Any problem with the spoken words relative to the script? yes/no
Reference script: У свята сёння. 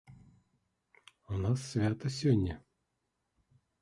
yes